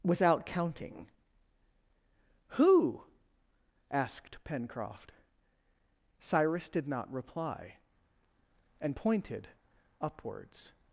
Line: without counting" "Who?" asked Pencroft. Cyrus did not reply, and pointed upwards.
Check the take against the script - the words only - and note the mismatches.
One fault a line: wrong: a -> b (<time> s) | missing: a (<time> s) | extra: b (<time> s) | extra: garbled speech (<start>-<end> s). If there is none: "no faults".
no faults